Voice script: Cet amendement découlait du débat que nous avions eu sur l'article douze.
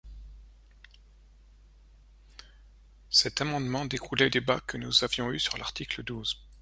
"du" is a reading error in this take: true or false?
true